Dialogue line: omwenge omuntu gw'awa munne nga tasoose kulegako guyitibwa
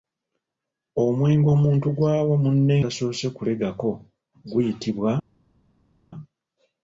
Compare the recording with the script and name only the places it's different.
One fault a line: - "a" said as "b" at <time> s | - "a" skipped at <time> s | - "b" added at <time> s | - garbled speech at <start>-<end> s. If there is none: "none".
- "nga" skipped at 2.8 s